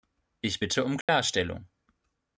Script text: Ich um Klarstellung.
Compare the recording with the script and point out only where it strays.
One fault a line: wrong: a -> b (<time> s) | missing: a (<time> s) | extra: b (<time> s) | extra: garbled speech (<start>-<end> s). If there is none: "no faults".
extra: bitte (0.6 s)